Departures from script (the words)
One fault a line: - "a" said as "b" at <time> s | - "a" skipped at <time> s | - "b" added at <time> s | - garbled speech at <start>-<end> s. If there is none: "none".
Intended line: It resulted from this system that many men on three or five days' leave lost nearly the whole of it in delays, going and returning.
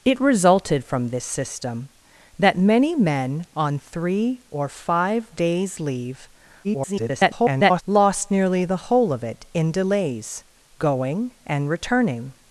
- garbled speech at 6.6-7.8 s